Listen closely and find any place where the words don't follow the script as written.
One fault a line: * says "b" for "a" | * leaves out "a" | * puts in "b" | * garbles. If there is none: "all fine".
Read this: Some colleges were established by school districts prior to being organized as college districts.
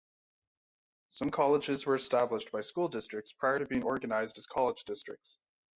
all fine